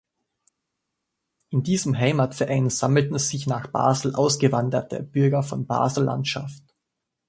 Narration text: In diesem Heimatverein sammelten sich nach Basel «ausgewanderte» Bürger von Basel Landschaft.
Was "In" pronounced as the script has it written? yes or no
yes